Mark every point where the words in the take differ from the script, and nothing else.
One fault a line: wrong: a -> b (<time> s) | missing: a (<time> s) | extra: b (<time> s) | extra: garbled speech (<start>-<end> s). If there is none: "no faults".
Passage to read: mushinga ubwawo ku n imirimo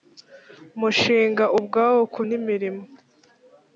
no faults